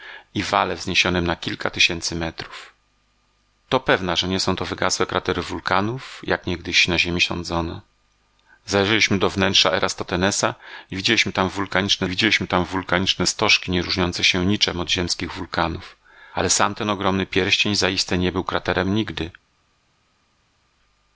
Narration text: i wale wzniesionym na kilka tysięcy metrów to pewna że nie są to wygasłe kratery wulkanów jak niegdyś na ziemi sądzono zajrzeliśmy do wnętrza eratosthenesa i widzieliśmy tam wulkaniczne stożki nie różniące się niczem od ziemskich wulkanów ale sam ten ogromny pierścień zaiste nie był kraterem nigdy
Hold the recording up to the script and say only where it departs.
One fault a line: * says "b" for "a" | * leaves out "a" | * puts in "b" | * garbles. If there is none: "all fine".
* puts in "widzieliśmy tam wulkaniczne"